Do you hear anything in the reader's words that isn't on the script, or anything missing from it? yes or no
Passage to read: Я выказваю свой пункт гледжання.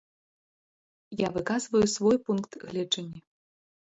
no